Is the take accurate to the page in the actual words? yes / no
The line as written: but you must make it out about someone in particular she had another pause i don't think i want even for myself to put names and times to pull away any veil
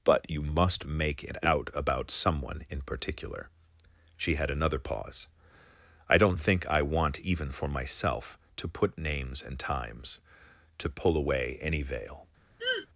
yes